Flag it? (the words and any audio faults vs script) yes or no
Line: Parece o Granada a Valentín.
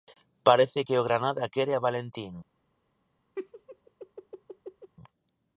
yes